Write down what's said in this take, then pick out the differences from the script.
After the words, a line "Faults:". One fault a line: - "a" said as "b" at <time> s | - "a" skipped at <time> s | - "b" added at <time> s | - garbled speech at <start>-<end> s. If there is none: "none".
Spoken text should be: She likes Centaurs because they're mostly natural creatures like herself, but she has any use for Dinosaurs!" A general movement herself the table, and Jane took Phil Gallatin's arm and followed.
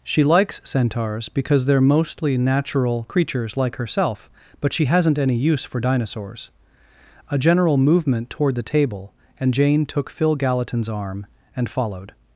She likes Centaurs because they're mostly natural creatures like herself, but she hasn't any use for Dinosaurs!" A general movement toward the table, and Jane took Phil Gallatin's arm and followed.
Faults:
- "has" said as "hasn't" at 4.8 s
- "herself" said as "toward" at 8.3 s